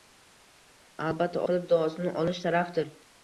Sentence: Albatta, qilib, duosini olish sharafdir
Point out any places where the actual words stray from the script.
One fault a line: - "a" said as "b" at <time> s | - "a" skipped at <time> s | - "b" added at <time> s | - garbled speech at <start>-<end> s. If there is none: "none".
none